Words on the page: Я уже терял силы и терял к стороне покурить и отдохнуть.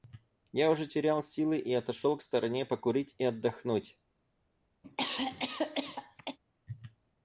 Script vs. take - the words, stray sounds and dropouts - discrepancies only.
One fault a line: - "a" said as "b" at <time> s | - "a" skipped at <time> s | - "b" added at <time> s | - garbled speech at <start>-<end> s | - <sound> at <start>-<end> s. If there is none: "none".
- "терял" said as "отошел" at 1.7 s
- cough at 4.8-6.4 s